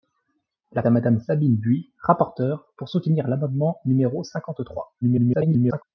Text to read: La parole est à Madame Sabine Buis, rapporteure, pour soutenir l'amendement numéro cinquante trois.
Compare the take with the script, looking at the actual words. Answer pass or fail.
fail